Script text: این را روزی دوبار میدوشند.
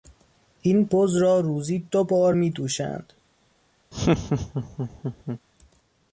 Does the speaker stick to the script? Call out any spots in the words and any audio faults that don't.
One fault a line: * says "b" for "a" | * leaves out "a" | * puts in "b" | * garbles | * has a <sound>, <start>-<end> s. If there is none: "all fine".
* puts in "بز"
* has a laugh, 3.9-5.4 s